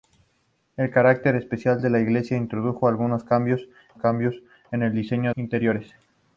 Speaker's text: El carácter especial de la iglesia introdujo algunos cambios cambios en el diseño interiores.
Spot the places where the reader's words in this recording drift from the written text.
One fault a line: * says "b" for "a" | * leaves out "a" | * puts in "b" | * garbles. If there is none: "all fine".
all fine